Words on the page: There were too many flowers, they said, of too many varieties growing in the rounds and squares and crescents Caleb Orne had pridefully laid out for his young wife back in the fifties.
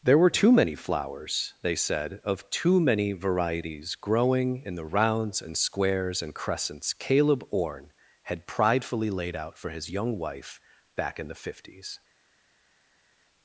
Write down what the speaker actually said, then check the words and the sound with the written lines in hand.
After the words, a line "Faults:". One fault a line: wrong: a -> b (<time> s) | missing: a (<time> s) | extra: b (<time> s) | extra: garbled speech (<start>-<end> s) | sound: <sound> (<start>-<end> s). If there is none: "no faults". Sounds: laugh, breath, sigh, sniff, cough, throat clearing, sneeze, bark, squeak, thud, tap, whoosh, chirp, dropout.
There were too many flowers, they said, of too many varieties growing in the rounds and squares and crescents Caleb Orne had pridefully laid out for his young wife back in the fifties.
Faults:
no faults